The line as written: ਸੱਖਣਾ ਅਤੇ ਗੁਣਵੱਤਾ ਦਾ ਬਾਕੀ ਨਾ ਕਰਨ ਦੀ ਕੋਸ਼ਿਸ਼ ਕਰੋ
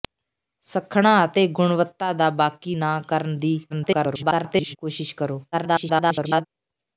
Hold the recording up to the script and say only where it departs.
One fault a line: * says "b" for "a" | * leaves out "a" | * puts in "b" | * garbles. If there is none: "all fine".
* garbles
* garbles